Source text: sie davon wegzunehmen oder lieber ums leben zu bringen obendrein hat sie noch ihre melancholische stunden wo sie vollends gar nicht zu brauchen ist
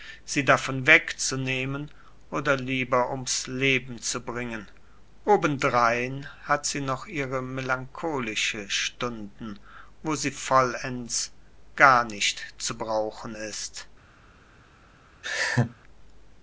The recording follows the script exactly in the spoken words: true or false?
true